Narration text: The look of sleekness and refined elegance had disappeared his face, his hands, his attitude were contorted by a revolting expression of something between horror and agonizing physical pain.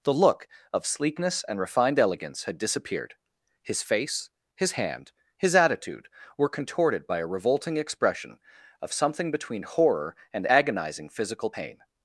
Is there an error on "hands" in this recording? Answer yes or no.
yes